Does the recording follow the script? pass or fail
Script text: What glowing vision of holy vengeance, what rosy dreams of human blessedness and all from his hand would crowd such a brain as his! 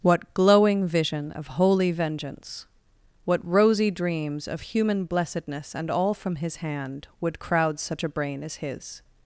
pass